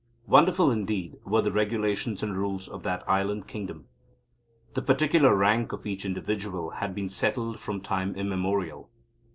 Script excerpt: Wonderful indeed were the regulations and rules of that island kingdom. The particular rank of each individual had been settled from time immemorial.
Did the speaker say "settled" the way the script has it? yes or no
yes